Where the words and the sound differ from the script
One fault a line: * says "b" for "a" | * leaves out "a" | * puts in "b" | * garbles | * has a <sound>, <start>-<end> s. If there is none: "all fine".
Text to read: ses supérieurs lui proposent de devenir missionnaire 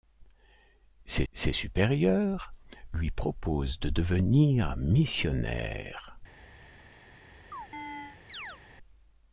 * puts in "ses"
* has a chirp, 7.5-8.6 s